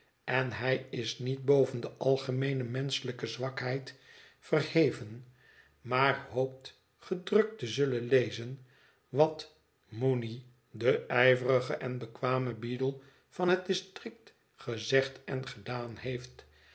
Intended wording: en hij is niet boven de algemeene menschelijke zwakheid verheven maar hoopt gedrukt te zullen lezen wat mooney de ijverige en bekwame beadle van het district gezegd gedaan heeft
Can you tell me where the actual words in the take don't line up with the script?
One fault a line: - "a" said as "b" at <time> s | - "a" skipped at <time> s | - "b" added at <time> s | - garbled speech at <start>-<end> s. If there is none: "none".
- "en" added at 15.2 s